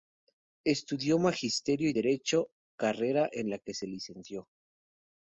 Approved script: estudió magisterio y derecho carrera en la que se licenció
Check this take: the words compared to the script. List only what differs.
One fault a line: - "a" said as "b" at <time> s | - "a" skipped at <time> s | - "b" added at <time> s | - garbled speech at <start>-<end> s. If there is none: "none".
none